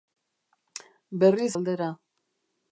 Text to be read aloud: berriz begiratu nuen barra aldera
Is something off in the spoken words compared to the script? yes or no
yes